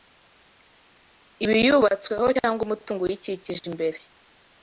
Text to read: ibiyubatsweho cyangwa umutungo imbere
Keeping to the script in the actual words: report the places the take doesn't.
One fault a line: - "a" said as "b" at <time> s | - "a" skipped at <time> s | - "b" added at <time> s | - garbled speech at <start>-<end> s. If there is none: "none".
- "uyikikije" added at 3.0 s